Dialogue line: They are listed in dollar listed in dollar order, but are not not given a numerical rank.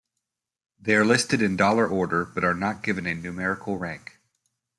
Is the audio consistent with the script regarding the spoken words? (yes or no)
no